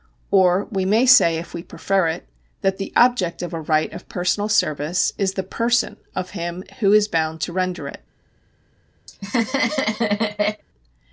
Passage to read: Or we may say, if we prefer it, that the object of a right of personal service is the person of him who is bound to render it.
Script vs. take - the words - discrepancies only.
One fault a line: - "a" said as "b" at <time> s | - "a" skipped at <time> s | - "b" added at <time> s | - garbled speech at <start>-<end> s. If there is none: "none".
none